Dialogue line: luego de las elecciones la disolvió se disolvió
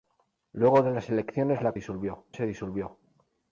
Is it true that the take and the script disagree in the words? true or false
false